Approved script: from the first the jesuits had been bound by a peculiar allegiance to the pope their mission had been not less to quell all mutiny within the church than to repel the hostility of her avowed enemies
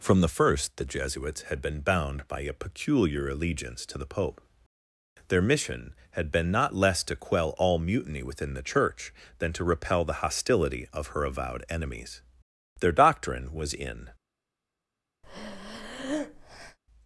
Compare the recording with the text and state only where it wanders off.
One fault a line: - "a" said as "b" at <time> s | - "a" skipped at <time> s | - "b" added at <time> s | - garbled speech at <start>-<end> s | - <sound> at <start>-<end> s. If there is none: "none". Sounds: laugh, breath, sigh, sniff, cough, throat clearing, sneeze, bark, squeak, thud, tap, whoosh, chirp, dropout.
- "their doctrine was in" added at 12.8 s
- breath at 15.2-16.8 s